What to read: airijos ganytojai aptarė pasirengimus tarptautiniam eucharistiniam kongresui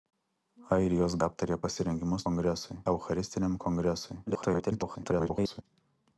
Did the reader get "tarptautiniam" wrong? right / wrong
wrong